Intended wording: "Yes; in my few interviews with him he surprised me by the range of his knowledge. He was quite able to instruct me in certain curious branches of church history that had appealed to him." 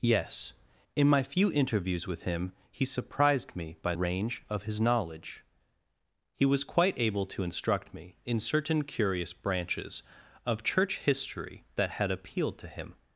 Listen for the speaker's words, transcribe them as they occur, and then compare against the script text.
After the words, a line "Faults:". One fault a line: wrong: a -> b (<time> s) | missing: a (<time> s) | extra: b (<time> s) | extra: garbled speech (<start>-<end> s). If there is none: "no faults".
"Yes; in my few interviews with him he surprised me by range of his knowledge. He was quite able to instruct me in certain curious branches of church history that had appealed to him."
Faults:
missing: the (3.9 s)